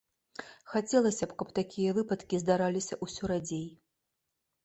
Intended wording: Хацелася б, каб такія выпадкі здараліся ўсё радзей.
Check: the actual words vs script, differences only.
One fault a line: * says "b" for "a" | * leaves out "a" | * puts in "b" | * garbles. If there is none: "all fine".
all fine